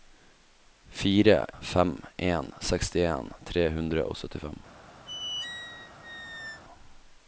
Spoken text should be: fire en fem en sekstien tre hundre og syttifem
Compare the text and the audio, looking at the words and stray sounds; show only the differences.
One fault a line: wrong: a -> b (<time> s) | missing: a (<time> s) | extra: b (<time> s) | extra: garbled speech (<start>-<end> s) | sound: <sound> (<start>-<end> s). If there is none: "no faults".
missing: en (1.4 s)
sound: squeak (5.1-6.6 s)